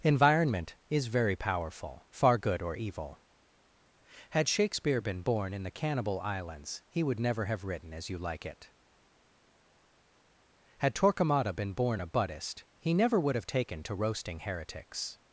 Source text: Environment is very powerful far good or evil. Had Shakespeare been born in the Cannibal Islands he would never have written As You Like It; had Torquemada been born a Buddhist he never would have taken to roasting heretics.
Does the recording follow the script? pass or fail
pass